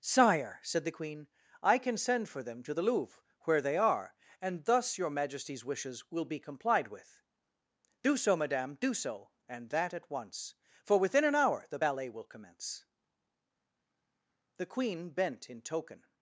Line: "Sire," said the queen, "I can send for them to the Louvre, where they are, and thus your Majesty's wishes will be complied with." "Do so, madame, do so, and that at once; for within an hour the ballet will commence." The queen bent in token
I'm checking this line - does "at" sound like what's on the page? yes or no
yes